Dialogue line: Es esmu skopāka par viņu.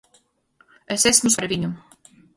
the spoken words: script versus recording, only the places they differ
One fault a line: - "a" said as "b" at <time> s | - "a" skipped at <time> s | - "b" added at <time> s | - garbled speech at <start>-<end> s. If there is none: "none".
- "skopāka" skipped at 1.3 s